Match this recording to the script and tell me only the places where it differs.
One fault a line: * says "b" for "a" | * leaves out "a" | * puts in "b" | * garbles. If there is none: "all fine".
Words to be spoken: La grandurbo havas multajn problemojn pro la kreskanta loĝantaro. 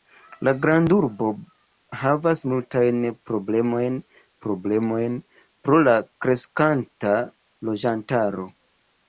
* puts in "problemojn"